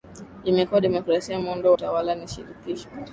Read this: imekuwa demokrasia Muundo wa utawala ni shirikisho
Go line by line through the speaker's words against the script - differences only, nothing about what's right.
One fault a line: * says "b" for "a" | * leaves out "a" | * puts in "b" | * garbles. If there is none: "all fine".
* leaves out "wa"